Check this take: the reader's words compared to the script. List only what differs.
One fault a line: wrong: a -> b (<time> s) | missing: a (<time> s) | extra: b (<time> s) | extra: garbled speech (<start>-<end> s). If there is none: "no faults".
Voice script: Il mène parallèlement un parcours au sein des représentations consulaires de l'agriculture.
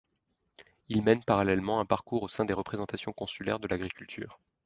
no faults